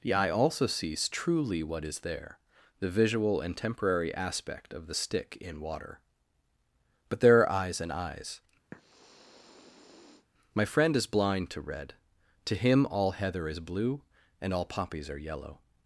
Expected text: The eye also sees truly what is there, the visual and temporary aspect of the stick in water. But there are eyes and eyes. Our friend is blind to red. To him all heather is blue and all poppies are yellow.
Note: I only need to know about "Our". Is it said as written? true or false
false